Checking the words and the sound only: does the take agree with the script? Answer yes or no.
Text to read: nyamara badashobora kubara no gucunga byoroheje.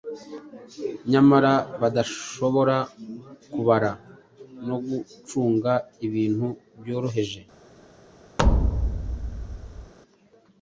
no